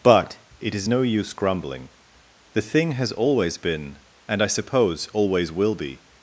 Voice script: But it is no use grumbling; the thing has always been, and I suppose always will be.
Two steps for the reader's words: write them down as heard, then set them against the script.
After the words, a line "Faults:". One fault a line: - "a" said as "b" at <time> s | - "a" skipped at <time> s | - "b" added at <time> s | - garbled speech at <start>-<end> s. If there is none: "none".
But it is no use grumbling; the thing has always been, and I suppose always will be.
Faults:
none